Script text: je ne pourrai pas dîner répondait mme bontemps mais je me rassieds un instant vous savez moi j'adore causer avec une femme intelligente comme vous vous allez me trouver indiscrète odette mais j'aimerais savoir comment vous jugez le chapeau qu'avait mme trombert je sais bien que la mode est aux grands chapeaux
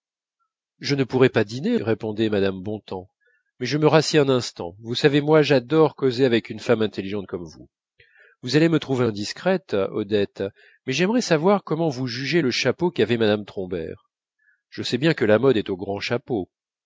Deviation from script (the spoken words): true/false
false